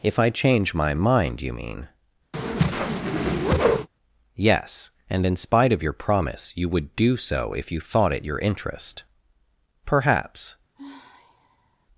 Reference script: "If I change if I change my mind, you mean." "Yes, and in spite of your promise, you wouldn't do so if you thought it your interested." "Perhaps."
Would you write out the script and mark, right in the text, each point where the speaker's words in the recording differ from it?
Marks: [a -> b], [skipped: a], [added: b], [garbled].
"If I change [skipped: if I change] my mind, you mean." "Yes, and in spite of your promise, you [wouldn't -> would] do so if you thought it your [interested." -> interest] "Perhaps."